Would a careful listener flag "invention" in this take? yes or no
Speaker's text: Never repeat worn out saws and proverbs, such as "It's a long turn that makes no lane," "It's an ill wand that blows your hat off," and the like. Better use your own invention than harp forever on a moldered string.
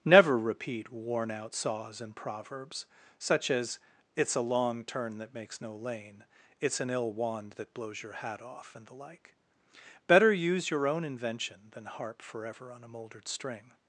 no